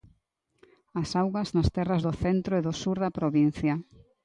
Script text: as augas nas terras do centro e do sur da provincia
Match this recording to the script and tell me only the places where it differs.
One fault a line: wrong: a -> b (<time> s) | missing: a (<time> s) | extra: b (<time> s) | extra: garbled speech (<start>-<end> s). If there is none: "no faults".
no faults